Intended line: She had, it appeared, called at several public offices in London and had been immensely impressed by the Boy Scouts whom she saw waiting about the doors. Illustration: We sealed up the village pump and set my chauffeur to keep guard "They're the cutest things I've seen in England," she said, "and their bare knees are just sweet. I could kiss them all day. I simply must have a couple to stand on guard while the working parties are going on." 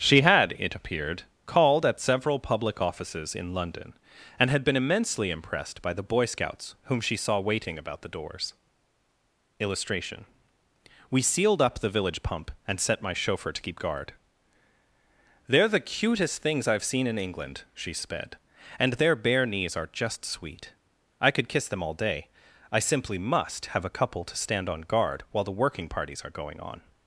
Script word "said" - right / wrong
wrong